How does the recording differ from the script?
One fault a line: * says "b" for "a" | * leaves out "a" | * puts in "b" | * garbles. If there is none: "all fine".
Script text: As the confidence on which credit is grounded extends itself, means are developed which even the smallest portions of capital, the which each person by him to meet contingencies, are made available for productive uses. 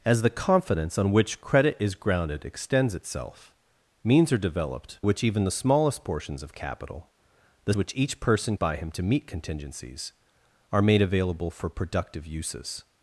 all fine